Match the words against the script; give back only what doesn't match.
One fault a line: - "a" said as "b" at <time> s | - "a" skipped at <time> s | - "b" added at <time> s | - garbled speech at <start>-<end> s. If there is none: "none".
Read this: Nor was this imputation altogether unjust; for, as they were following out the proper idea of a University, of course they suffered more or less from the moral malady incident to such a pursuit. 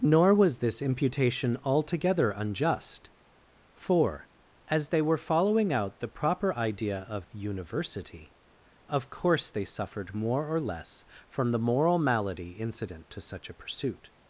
- "a" skipped at 7.3 s